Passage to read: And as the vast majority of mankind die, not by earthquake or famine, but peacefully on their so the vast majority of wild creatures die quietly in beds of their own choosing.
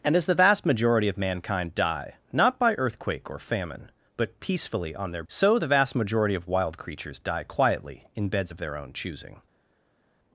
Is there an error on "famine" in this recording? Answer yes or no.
no